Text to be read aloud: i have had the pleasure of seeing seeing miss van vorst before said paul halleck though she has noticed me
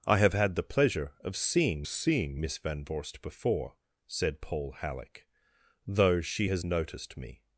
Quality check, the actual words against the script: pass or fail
pass